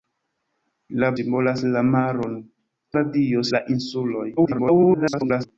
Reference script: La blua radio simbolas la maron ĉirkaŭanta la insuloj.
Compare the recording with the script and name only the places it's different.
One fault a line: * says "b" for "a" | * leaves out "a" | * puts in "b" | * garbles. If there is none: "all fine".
* leaves out "blua radio"
* says "radio" for "ĉirkaŭanta"
* garbles